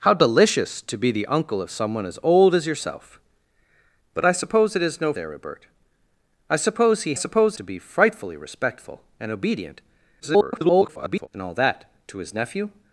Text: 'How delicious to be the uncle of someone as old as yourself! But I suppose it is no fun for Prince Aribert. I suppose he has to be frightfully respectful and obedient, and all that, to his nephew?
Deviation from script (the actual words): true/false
true